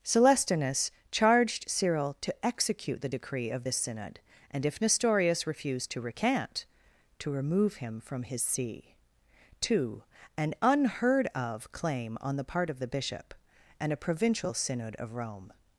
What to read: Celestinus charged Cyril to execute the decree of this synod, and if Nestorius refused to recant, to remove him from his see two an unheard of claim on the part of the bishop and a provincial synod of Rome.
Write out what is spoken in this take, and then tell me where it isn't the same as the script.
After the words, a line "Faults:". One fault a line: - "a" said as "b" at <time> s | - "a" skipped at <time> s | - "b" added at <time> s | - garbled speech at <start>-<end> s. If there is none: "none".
Celestinus charged Cyril to execute the decree of this synod, and if Nestorius refused to recant, to remove him from his see two an unheard of claim on the part of the bishop and a provincial synod of Rome.
Faults:
none